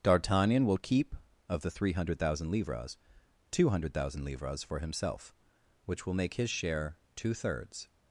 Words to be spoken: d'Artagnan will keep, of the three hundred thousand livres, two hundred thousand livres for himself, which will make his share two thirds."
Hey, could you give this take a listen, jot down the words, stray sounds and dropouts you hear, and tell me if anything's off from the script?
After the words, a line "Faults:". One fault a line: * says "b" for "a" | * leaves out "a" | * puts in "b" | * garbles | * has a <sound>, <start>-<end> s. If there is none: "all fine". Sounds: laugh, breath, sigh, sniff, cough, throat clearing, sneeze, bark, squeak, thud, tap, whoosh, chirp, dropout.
d'Artagnan will keep, of the three hundred thousand livres, two hundred thousand livres for himself, which will make his share two thirds."
Faults:
all fine